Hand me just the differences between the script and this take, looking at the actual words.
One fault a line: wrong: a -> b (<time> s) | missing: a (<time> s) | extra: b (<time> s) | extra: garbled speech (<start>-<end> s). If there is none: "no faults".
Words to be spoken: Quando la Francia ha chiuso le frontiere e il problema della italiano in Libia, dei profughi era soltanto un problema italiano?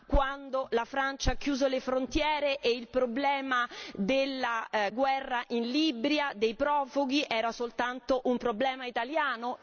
wrong: italiano -> guerra (4.9 s)